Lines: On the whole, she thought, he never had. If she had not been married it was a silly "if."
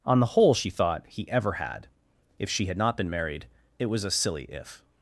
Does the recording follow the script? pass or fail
fail